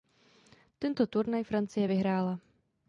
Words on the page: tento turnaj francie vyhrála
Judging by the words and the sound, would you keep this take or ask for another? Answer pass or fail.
pass